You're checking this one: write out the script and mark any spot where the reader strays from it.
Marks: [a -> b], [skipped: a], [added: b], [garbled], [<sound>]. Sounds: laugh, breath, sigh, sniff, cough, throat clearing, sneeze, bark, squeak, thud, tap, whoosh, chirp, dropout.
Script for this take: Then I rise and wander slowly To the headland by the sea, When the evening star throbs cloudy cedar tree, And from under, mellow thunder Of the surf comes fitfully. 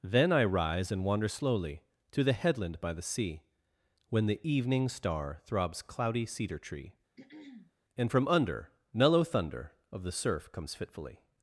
Then I rise and wander slowly To the headland by the sea, When the evening star throbs cloudy cedar tree, [throat clearing] And from under, mellow thunder Of the surf comes fitfully.